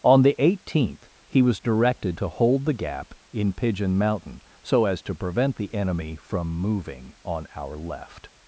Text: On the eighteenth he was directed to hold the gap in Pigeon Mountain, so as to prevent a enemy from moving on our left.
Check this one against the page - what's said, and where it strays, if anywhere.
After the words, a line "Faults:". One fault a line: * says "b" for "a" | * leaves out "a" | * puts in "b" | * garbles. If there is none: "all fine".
On the eighteenth he was directed to hold the gap in Pigeon Mountain, so as to prevent the enemy from moving on our left.
Faults:
* says "the" for "a"